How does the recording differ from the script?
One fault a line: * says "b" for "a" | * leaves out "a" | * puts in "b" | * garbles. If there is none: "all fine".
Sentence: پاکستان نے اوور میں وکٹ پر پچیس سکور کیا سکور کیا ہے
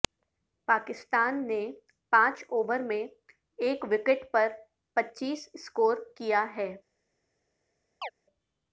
* puts in "پانچ"
* puts in "ایک"
* leaves out "سکور کیا"